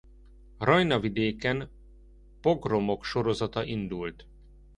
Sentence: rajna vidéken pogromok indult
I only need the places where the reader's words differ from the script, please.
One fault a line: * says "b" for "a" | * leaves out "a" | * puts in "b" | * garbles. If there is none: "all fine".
* puts in "sorozata"